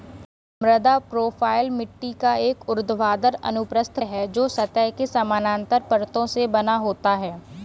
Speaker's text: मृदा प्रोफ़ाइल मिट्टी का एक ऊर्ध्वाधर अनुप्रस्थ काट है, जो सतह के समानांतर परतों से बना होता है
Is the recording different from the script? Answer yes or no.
yes